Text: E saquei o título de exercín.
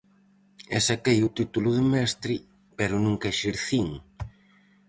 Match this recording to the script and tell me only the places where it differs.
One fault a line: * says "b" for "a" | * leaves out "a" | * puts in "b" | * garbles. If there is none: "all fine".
* puts in "mestre pero nunca"